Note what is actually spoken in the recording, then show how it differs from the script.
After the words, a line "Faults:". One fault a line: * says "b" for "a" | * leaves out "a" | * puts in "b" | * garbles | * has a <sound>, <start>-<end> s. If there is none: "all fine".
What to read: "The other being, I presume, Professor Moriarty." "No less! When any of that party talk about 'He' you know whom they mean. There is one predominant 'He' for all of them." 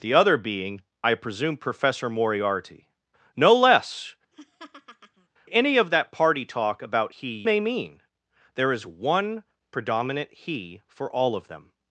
"The other being, I presume, Professor Moriarty." "No less! Any of that party talk about 'He' they mean. There is one predominant 'He' for all of them."
Faults:
* leaves out "When"
* has a laugh, 4.3-5.3 s
* leaves out "you know whom"